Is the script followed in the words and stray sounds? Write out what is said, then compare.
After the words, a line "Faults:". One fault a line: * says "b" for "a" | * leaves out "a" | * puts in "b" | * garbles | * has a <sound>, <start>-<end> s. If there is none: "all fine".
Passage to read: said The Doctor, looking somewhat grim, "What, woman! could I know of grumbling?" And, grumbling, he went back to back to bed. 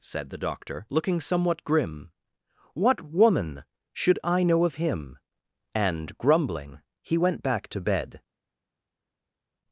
said The Doctor, looking somewhat grim, "What, woman! should I know of him?" And, grumbling, he went back to bed.
Faults:
* says "should" for "could"
* says "him" for "grumbling"
* leaves out "back to"